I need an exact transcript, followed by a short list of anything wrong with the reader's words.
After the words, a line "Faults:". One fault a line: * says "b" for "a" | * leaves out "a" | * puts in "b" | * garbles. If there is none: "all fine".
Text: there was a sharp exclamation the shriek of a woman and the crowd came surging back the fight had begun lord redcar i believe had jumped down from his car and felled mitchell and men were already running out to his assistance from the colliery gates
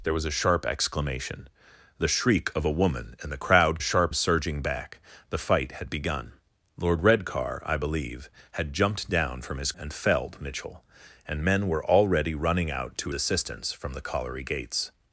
there was a sharp exclamation the shriek of a woman and the crowd sharp surging back the fight had begun lord redcar i believe had jumped down from his and felled mitchell and men were already running out to assistance from the colliery gates
Faults:
* says "sharp" for "came"
* leaves out "car"
* leaves out "his"